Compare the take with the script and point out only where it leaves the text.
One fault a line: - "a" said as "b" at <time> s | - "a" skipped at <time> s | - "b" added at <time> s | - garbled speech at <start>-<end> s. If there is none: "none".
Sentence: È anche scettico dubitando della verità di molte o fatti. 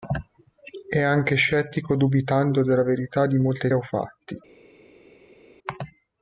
none